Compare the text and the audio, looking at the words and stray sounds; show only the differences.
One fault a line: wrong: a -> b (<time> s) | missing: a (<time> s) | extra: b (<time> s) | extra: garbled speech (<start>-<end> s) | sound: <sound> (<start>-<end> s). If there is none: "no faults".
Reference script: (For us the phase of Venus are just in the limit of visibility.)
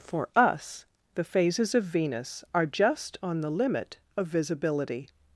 wrong: phase -> phases (1.2 s)
wrong: in -> on (3.2 s)